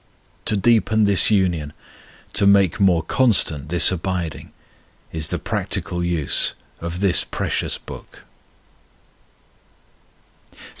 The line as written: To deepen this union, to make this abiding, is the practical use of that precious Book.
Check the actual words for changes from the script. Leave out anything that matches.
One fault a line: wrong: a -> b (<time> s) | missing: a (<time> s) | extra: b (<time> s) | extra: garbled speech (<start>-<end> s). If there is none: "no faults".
extra: more constant (2.8 s)
wrong: that -> this (7.0 s)